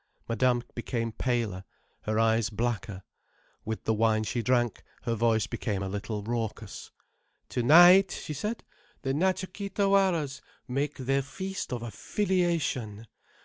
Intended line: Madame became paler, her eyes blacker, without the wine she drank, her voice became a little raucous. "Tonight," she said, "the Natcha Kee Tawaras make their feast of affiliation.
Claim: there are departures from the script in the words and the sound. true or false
true